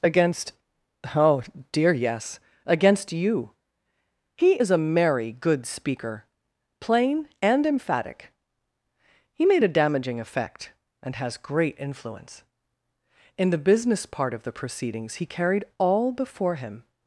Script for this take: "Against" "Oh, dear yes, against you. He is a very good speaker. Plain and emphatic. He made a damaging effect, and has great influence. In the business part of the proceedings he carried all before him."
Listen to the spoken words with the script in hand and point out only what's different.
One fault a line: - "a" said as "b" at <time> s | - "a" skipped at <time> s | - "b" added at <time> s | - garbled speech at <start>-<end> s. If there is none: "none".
- "very" said as "merry" at 4.8 s